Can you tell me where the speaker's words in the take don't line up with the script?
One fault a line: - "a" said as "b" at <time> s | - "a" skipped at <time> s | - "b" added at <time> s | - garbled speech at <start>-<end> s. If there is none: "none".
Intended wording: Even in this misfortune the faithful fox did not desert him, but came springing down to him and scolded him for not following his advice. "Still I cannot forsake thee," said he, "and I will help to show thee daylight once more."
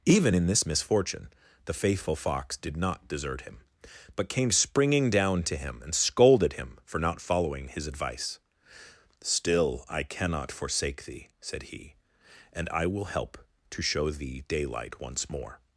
none